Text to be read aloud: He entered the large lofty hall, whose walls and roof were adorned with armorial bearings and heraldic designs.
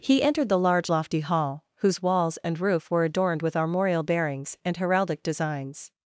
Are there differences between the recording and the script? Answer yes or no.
no